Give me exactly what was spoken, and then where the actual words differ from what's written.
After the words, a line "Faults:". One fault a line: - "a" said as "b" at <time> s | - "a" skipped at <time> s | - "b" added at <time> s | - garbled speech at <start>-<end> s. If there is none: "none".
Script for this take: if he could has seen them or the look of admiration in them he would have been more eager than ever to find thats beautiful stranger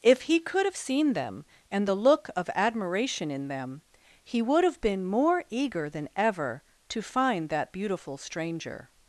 if he could have seen them and the look of admiration in them he would have been more eager than ever to find that beautiful stranger
Faults:
- "has" said as "have" at 0.7 s
- "or" said as "and" at 1.7 s
- "thats" said as "that" at 7.5 s